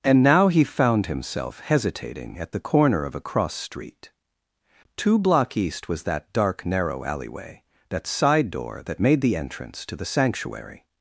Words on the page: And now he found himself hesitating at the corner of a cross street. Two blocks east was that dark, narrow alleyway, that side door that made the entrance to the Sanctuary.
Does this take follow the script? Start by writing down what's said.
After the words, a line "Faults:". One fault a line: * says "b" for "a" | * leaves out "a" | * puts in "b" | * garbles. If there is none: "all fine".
And now he found himself hesitating at the corner of a cross street. Two block east was that dark, narrow alleyway, that side door that made the entrance to the Sanctuary.
Faults:
* says "block" for "blocks"